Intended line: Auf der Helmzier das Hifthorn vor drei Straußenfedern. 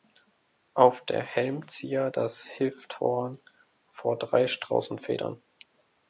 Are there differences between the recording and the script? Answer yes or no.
no